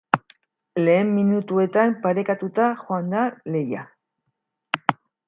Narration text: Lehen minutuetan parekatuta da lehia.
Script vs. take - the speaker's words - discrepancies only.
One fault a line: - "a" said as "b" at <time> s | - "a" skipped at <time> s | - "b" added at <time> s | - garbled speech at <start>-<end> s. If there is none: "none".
- "joan" added at 2.8 s